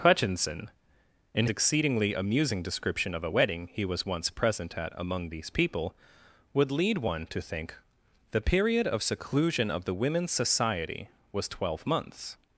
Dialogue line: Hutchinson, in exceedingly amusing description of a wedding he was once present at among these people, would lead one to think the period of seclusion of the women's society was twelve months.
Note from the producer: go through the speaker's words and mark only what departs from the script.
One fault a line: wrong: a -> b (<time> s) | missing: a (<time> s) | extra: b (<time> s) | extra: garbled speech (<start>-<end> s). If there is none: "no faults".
no faults